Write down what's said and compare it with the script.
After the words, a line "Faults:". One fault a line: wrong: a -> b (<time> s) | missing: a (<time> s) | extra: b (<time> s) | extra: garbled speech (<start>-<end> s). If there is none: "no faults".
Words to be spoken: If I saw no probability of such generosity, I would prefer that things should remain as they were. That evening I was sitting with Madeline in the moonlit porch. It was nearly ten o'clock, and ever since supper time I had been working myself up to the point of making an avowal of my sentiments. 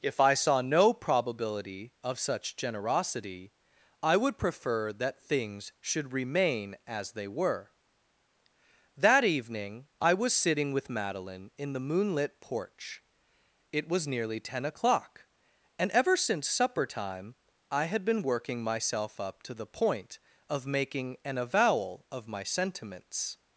If I saw no probability of such generosity, I would prefer that things should remain as they were. That evening I was sitting with Madeline in the moonlit porch. It was nearly ten o'clock, and ever since supper time I had been working myself up to the point of making an avowal of my sentiments.
Faults:
no faults